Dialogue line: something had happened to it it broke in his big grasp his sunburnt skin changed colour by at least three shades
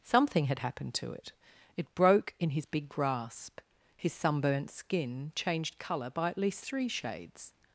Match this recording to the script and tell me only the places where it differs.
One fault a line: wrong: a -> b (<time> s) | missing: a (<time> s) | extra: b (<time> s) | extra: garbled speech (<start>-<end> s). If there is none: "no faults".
no faults